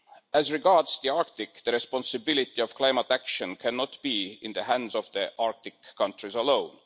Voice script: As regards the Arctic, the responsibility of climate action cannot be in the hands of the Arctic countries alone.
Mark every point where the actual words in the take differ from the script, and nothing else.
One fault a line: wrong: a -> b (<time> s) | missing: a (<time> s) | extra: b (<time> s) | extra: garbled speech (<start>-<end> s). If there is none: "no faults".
no faults